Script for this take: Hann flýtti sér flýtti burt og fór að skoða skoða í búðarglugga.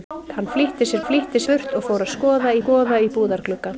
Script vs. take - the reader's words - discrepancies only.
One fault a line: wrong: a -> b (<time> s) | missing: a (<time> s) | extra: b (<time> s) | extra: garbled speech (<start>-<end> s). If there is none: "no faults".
no faults